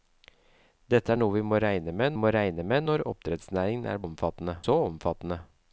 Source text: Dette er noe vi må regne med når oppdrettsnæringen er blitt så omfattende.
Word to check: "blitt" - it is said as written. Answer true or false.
false